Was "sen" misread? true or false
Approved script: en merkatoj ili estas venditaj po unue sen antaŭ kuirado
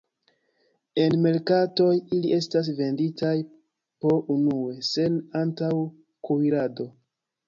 false